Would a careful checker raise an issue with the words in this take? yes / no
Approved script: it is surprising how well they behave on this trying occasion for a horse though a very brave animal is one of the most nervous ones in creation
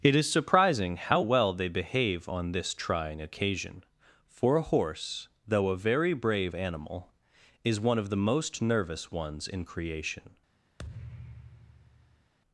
no